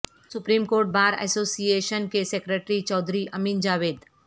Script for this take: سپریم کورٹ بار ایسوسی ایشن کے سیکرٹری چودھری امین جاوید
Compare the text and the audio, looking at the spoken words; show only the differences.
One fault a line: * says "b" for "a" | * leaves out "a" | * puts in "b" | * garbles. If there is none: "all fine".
all fine